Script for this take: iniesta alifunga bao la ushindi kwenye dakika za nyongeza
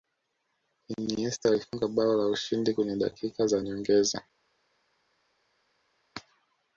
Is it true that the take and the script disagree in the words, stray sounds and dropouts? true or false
false